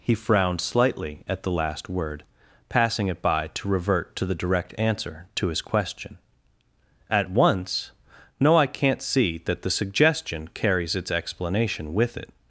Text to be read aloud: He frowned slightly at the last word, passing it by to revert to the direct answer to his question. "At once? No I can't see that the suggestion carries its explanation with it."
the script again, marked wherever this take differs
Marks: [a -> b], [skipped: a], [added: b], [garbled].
He frowned slightly at the last word, passing it by to revert to the direct answer to his question. "At once? No I can't see that the suggestion carries its explanation with it."